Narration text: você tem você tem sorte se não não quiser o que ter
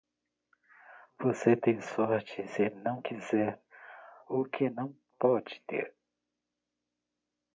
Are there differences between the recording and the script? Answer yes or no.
yes